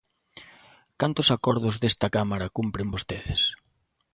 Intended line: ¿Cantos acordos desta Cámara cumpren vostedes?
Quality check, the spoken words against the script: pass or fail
pass